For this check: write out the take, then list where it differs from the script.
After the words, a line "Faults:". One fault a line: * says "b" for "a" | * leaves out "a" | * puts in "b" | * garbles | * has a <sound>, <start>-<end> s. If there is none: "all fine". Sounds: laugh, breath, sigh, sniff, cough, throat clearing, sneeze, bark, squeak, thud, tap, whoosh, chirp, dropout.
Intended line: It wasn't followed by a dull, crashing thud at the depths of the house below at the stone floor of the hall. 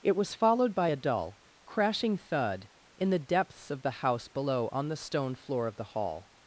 It was followed by a dull, crashing thud in the depths of the house below on the stone floor of the hall.
Faults:
* says "was" for "wasn't"
* says "in" for "at"
* says "on" for "at"